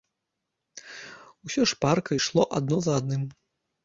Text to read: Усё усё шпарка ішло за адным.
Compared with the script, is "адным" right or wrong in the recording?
right